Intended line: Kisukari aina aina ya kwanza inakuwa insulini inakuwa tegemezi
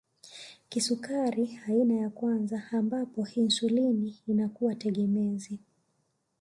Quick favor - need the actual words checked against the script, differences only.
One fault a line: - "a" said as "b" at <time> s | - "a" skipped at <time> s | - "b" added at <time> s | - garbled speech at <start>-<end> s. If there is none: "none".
- "aina" skipped at 1.9 s
- "inakuwa" said as "ambapo" at 2.7 s